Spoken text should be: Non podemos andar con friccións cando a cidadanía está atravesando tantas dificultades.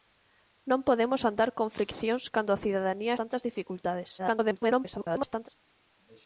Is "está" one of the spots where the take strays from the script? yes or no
yes